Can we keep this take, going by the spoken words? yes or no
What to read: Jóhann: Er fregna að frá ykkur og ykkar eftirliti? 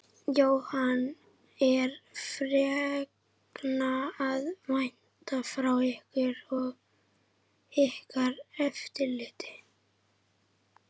no